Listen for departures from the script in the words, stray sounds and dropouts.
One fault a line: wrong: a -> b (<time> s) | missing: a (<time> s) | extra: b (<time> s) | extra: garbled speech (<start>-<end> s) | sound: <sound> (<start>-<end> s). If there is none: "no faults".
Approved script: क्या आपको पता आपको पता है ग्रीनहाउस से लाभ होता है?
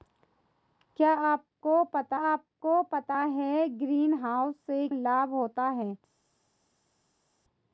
no faults